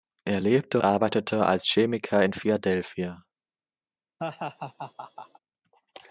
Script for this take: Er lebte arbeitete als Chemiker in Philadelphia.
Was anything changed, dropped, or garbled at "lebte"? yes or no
no